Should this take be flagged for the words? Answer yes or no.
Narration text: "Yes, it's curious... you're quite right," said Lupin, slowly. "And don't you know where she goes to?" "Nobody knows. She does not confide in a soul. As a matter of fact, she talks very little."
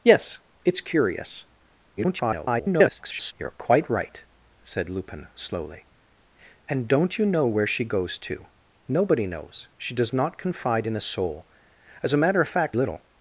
yes